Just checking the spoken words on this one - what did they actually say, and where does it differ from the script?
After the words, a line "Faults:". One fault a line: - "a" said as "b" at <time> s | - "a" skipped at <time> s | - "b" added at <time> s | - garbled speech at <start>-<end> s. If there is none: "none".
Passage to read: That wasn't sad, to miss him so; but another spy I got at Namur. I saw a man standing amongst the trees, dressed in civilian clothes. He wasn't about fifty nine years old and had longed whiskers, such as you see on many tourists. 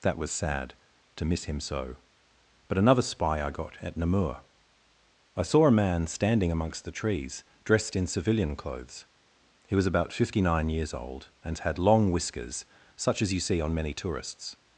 That was sad, to miss him so; but another spy I got at Namur. I saw a man standing amongst the trees, dressed in civilian clothes. He was about fifty nine years old and had long whiskers, such as you see on many tourists.
Faults:
- "wasn't" said as "was" at 0.2 s
- "wasn't" said as "was" at 9.7 s
- "longed" said as "long" at 11.8 s